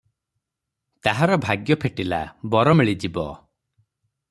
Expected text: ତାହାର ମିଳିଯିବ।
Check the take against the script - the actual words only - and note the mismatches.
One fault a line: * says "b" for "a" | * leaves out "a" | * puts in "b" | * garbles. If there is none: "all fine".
* puts in "ଭାଗ୍ୟ ଫିଟିଲା ବର"